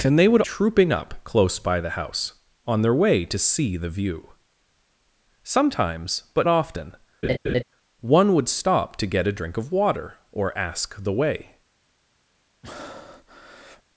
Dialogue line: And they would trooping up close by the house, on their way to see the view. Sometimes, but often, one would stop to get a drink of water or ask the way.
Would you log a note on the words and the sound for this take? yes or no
yes